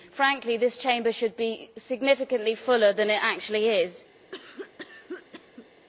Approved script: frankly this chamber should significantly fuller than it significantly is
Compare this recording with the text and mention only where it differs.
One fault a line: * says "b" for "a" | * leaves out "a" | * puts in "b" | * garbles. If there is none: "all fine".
* puts in "be"
* says "actually" for "significantly"